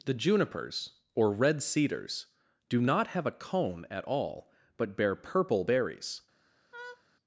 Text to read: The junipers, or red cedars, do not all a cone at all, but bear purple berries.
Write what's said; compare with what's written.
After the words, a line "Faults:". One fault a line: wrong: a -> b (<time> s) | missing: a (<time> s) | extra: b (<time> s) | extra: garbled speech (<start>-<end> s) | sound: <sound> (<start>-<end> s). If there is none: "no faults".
The junipers, or red cedars, do not have a cone at all, but bear purple berries.
Faults:
wrong: all -> have (3.1 s)
sound: laugh (6.7-7.0 s)